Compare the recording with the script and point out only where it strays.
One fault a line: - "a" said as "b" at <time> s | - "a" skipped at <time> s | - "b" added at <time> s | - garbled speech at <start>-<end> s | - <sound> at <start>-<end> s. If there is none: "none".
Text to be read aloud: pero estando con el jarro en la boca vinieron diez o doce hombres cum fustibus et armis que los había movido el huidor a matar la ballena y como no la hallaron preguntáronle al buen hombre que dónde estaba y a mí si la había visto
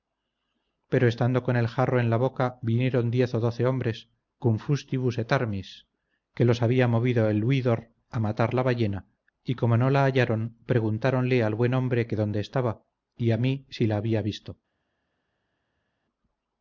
none